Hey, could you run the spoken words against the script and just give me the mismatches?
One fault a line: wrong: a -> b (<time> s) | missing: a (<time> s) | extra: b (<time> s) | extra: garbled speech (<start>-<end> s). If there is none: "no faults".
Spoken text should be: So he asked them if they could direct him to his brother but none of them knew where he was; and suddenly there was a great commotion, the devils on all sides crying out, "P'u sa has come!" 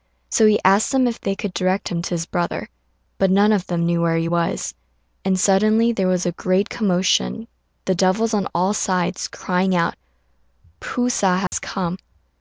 no faults